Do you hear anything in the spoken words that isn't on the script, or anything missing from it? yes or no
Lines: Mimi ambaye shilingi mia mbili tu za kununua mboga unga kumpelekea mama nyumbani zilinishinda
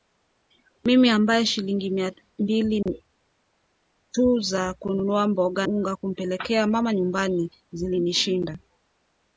no